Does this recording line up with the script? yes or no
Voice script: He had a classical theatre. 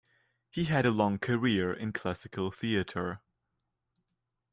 no